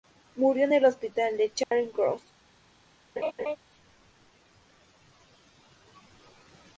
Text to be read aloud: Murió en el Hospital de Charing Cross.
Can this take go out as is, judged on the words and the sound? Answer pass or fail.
fail